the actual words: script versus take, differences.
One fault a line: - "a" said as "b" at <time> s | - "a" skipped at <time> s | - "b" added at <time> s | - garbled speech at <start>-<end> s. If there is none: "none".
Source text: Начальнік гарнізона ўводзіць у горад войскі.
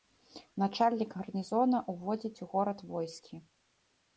none